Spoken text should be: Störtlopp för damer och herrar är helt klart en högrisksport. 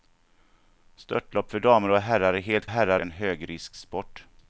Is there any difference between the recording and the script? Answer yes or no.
yes